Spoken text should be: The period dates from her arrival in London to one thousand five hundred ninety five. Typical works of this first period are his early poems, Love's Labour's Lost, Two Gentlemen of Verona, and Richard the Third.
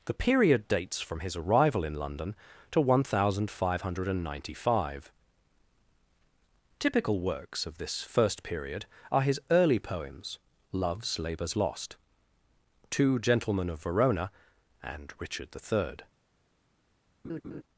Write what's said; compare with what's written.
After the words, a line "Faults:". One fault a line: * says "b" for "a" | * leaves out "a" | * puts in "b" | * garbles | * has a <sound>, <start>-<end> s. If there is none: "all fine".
The period dates from his arrival in London to one thousand five hundred ninety five. Typical works of this first period are his early poems, Love's Labour's Lost, Two Gentlemen of Verona, and Richard the Third.
Faults:
* says "his" for "her"
* has a laugh, 17.2-17.6 s